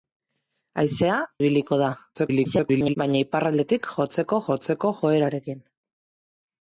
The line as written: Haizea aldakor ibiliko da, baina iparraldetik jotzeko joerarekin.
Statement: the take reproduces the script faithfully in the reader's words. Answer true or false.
false